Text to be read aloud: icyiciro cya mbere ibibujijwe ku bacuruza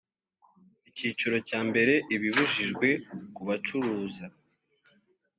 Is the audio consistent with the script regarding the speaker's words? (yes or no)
yes